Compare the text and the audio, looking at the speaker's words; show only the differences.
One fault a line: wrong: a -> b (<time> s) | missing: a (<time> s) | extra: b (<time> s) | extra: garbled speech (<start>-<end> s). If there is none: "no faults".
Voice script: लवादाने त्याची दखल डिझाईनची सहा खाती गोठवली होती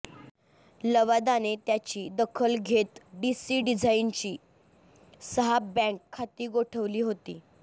extra: घेत डीसी (2.6 s)
extra: बँक (5.7 s)